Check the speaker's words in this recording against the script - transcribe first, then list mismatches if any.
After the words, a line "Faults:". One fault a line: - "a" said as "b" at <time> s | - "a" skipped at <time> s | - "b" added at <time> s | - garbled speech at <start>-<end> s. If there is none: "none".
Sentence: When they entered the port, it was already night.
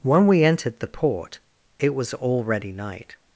When we entered the port, it was already night.
Faults:
- "they" said as "we" at 0.2 s